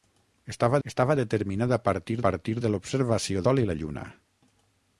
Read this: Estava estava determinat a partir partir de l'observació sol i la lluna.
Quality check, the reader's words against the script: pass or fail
pass